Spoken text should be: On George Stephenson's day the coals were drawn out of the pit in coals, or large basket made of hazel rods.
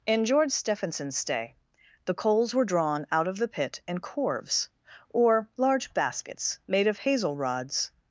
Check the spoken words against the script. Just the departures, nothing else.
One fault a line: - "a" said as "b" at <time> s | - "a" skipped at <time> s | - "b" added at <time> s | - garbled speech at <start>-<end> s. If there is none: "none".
- "On" said as "In" at 0.1 s
- "coals" said as "corves" at 4.0 s
- "basket" said as "baskets" at 5.9 s